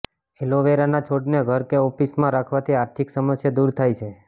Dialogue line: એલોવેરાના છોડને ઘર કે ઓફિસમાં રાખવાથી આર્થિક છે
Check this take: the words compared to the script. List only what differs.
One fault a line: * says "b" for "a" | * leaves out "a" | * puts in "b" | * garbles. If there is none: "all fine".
* puts in "સમસ્યા દૂર થાય"